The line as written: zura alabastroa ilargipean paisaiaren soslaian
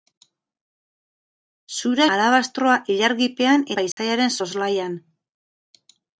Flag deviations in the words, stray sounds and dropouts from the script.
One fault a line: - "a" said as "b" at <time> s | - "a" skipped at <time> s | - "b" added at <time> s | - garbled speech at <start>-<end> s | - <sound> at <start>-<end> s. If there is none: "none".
- dropout at 3.9-4.0 s